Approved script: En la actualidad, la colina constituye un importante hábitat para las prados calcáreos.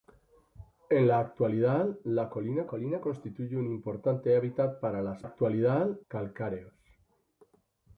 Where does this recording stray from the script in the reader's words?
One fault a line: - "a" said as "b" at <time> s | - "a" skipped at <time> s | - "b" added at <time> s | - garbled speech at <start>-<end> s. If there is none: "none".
- "colina" added at 2.6 s
- "prados" said as "actualidad" at 5.2 s